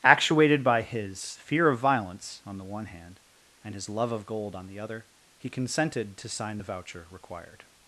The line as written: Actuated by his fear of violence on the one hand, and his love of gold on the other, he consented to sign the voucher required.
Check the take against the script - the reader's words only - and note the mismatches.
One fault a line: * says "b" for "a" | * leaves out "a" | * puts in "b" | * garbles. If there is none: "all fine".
all fine